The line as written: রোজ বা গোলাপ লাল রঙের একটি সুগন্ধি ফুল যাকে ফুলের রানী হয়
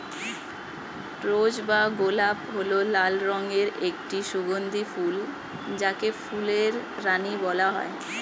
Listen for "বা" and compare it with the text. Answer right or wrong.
right